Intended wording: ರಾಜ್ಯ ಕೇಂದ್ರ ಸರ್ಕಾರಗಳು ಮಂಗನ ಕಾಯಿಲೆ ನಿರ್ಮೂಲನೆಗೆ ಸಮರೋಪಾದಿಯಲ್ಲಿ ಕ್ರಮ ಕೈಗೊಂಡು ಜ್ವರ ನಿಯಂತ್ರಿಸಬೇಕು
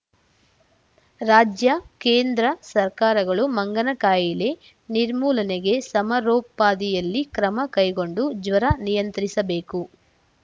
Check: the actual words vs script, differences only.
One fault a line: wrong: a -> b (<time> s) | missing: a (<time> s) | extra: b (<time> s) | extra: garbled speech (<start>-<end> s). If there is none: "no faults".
no faults